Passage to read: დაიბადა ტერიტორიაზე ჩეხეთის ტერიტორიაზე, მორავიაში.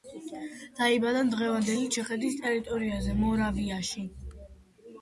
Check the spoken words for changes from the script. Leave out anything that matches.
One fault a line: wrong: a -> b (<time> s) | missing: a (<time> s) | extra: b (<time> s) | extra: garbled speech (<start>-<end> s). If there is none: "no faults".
wrong: ტერიტორიაზე -> დღევანდელი (1.4 s)